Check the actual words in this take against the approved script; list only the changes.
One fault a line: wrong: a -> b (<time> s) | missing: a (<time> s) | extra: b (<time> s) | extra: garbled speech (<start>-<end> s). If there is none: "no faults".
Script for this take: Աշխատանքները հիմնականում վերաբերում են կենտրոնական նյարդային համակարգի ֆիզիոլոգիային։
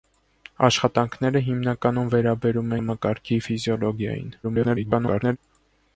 missing: են կենտրոնական նյարդային (2.7 s)
extra: garbled speech (4.4-5.4 s)